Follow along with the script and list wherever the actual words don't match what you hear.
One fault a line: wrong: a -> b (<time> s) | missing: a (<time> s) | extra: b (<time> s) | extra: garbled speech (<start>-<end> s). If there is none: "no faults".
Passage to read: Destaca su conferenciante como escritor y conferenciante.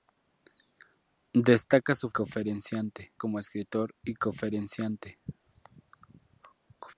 no faults